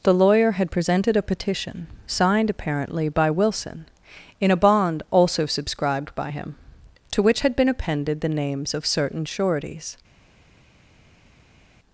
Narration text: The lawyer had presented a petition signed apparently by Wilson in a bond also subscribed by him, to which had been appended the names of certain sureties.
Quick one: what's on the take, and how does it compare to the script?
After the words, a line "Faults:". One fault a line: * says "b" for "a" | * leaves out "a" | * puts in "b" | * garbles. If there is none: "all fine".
The lawyer had presented a petition signed apparently by Wilson in a bond also subscribed by him, to which had been appended the names of certain sureties.
Faults:
all fine